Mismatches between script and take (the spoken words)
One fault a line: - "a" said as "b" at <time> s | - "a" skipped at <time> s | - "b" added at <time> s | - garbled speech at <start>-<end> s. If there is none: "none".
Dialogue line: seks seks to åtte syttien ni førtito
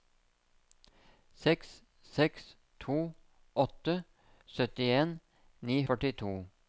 none